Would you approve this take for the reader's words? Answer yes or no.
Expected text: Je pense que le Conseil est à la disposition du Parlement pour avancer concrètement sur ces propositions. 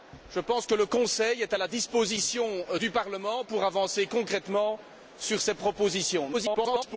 no